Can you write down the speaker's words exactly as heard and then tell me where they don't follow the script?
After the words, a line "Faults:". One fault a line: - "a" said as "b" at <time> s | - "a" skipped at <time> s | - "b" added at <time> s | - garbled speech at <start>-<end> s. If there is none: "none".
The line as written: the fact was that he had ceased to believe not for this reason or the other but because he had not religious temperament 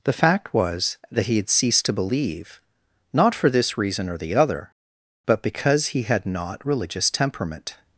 the fact was that he had ceased to believe not for this reason or the other but because he had not religious temperament
Faults:
none